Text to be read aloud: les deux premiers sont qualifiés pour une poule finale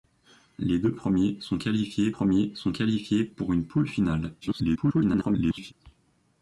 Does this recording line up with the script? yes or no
no